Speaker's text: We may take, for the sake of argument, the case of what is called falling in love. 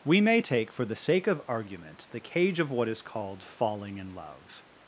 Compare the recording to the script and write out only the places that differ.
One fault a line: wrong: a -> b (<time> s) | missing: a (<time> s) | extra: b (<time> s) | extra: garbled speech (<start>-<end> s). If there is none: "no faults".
wrong: case -> cage (2.2 s)